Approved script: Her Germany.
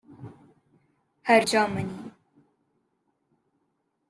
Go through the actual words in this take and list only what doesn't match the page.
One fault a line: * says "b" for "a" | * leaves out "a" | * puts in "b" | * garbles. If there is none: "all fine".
all fine